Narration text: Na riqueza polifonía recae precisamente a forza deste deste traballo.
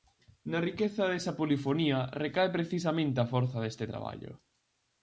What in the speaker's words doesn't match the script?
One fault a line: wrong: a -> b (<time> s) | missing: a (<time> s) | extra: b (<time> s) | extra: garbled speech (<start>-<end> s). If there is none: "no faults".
extra: desa (1.1 s)
missing: deste (3.9 s)